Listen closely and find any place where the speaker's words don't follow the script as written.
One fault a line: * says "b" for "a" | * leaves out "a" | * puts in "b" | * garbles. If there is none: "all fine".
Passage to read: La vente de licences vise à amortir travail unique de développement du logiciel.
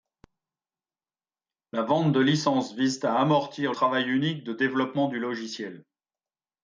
all fine